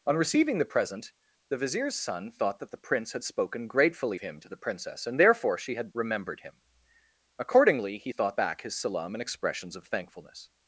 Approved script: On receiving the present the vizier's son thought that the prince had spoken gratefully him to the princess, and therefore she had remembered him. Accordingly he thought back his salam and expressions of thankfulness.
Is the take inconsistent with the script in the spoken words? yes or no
no